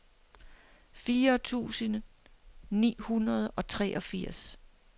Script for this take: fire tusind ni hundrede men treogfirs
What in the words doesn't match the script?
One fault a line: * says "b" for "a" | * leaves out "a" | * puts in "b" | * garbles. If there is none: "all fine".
* says "og" for "men"